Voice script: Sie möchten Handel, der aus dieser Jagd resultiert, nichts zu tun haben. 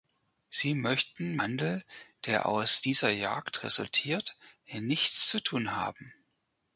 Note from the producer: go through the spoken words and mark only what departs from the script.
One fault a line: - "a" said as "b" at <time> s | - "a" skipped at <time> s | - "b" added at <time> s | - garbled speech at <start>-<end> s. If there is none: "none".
none